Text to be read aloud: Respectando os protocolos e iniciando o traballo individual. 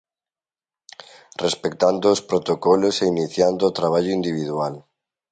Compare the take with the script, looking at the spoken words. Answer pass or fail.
pass